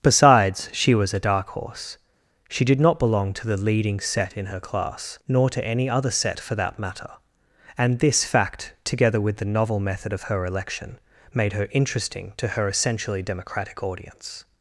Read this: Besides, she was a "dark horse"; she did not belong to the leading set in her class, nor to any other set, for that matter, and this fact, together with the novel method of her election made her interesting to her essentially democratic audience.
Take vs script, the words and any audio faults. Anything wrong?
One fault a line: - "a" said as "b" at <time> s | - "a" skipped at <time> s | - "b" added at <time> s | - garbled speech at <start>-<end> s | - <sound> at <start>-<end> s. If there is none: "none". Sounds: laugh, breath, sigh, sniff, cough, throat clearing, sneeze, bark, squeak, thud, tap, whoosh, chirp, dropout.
none